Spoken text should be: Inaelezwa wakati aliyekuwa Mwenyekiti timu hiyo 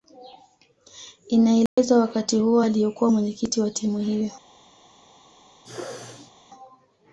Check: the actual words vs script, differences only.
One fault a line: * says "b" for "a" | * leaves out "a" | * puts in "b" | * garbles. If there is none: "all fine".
* puts in "huo"
* puts in "wa"